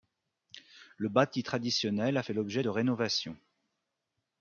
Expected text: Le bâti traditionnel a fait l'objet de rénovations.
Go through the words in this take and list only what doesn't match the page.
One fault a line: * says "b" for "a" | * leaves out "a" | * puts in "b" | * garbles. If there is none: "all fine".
all fine